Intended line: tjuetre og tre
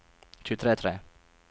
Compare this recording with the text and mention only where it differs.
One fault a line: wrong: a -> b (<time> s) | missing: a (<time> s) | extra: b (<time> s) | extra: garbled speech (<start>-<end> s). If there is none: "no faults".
no faults